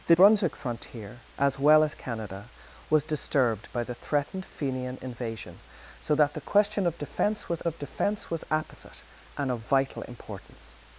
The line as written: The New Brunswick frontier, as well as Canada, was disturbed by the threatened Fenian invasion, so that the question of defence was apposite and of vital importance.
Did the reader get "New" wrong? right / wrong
wrong